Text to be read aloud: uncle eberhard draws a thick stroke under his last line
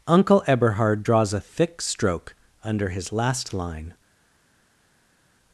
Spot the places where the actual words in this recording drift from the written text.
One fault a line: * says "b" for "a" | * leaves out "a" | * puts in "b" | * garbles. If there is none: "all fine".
all fine